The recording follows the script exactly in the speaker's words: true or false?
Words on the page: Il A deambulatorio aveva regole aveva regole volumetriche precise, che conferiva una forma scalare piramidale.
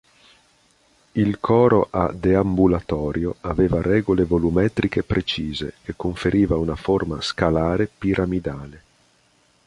false